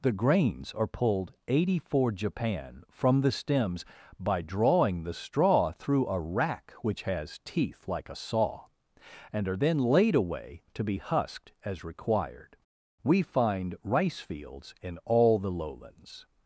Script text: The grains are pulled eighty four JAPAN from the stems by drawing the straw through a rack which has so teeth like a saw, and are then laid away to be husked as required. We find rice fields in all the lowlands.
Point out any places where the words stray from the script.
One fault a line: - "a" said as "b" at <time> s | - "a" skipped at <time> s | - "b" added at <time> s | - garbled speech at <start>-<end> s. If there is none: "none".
- "so" skipped at 7.4 s